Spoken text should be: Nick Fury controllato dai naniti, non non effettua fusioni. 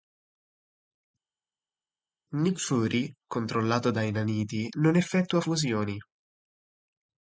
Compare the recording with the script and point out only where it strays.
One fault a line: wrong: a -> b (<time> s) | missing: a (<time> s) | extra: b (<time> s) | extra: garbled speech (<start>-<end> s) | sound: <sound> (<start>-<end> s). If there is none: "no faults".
missing: non (4.9 s)